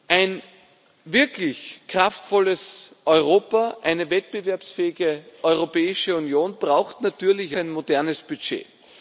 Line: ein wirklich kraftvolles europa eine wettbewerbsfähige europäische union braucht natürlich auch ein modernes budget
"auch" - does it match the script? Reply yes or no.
no